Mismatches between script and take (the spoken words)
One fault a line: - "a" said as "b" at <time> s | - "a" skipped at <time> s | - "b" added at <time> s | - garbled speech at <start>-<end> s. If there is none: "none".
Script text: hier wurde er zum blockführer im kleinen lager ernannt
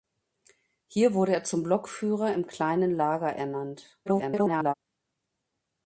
- garbled speech at 4.1-4.7 s